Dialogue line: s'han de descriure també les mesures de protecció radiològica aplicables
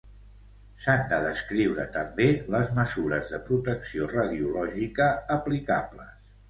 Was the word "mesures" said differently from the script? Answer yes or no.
no